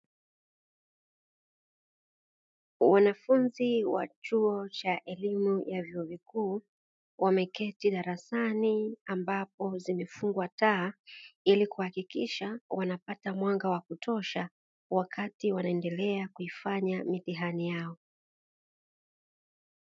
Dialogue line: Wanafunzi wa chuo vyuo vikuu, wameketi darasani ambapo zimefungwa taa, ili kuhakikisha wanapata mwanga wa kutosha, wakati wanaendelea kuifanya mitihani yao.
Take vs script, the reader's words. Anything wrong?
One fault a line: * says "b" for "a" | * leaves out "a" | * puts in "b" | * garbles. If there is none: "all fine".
* puts in "cha elimu ya"